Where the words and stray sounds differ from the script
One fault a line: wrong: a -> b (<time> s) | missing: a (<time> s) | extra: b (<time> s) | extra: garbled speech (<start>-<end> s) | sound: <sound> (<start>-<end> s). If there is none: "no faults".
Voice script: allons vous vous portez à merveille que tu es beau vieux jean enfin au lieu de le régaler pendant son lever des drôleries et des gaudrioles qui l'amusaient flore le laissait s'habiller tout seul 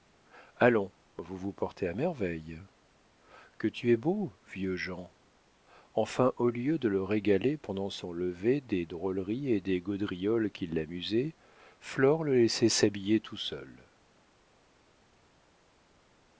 no faults